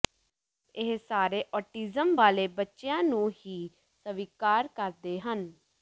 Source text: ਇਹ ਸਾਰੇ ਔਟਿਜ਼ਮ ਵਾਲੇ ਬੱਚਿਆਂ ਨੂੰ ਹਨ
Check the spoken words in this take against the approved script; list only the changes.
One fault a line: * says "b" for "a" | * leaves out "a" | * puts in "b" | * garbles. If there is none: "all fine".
* puts in "ਹੀ ਸਵੀਕਾਰ ਕਰਦੇ"